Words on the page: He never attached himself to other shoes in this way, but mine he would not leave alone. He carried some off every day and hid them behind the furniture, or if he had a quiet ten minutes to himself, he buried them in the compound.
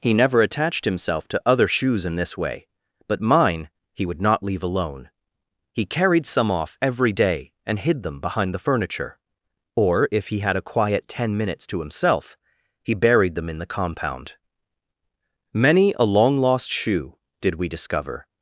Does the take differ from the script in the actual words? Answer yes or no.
yes